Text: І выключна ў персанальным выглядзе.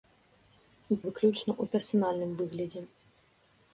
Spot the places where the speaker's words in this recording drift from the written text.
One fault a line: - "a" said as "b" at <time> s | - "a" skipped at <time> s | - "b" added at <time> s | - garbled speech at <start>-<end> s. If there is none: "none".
none